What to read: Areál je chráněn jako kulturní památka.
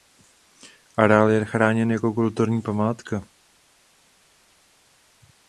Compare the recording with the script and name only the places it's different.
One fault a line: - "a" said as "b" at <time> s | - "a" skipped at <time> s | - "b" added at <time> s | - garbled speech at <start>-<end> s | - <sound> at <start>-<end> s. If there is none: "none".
none